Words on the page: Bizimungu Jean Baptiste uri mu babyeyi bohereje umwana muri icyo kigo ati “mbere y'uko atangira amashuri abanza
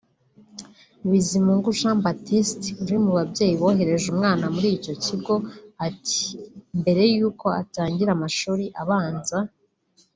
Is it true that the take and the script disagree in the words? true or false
false